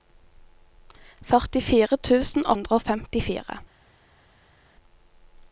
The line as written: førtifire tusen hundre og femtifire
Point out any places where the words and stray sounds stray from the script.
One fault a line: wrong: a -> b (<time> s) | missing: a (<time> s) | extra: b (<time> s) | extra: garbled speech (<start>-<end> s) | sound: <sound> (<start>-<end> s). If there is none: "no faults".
no faults